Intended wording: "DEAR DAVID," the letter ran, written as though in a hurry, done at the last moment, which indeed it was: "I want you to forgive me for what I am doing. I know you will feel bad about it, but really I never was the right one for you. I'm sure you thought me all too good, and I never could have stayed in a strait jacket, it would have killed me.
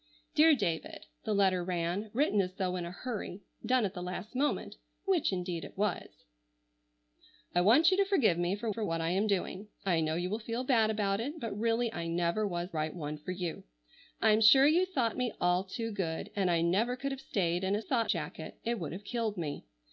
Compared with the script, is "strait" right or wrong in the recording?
wrong